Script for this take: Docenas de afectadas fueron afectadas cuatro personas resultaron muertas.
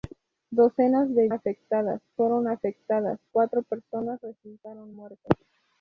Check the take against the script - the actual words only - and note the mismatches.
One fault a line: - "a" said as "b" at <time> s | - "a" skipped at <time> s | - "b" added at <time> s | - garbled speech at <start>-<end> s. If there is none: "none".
none